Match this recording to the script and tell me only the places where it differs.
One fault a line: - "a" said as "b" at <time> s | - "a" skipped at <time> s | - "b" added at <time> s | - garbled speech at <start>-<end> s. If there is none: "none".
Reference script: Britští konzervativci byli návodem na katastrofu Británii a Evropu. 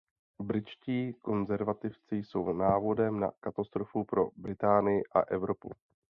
- "byli" said as "jsou" at 2.1 s
- "pro" added at 4.0 s